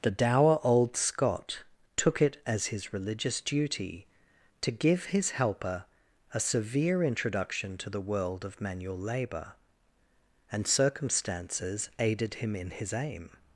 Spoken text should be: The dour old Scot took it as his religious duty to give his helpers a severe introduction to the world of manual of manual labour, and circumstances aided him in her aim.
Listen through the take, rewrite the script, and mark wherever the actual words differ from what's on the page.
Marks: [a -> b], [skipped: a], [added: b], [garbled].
The dour old Scot took it as his religious duty to give his [helpers -> helper] a severe introduction to the world of manual [skipped: of manual] labour, and circumstances aided him in [her -> his] aim.